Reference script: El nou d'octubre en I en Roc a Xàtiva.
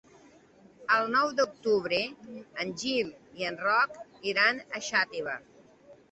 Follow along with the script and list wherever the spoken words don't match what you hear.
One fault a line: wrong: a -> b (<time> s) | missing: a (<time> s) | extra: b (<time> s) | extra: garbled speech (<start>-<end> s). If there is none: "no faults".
extra: Gil (2.8 s)
extra: iran (4.3 s)